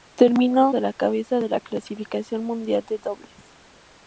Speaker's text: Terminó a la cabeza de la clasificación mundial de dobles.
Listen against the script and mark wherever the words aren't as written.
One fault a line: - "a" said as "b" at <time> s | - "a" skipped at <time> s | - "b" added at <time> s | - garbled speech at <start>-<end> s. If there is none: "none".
none